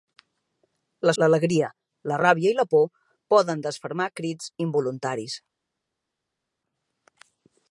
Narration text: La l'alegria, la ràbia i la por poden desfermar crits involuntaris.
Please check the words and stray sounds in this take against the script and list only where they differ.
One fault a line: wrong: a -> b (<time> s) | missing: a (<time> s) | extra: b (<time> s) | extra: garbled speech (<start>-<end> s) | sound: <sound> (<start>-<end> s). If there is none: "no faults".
no faults